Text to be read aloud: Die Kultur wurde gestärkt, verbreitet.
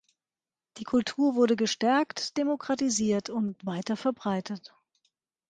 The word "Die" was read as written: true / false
true